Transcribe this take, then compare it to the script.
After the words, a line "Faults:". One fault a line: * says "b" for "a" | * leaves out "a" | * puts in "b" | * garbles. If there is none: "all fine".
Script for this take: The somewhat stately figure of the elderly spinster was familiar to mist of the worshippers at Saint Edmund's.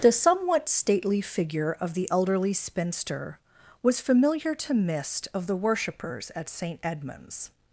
The somewhat stately figure of the elderly spinster was familiar to mist of the worshippers at Saint Edmund's.
Faults:
all fine